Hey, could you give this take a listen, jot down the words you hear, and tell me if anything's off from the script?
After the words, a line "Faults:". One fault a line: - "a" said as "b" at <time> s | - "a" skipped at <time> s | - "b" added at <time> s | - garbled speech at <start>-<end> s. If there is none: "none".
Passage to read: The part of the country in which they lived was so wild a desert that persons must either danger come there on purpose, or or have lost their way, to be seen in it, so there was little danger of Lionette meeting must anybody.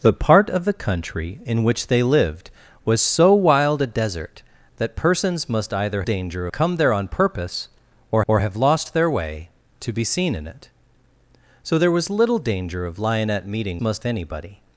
The part of the country in which they lived was so wild a desert that persons must either danger come there on purpose, or or have lost their way, to be seen in it, so there was little danger of Lionette meeting must anybody.
Faults:
none